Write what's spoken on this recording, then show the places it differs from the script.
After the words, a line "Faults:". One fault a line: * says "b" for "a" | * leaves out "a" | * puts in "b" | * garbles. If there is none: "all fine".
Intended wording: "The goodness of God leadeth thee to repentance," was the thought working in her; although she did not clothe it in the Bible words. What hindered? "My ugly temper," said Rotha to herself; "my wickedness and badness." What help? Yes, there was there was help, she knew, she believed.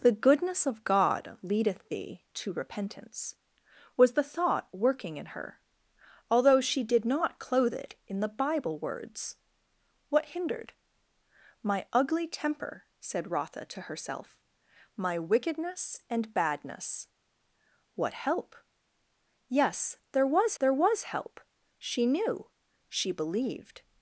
"The goodness of God leadeth thee to repentance," was the thought working in her; although she did not clothe it in the Bible words. What hindered? "My ugly temper," said Rotha to herself; "my wickedness and badness." What help? Yes, there was there was help, she knew, she believed.
Faults:
all fine